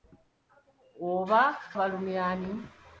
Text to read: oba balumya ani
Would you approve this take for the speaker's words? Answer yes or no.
yes